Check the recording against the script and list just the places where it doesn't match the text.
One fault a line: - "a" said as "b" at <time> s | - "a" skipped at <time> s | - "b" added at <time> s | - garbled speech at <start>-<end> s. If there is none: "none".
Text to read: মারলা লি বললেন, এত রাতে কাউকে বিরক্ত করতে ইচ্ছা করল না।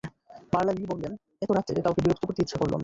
none